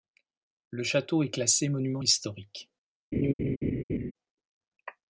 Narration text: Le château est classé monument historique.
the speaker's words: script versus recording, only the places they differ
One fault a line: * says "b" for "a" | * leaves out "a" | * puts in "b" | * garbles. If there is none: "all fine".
all fine